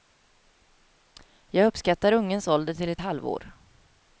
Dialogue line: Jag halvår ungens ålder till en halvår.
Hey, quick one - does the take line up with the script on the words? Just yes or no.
no